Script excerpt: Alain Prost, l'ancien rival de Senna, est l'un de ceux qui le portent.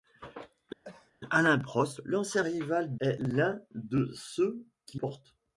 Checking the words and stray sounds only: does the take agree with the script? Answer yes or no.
no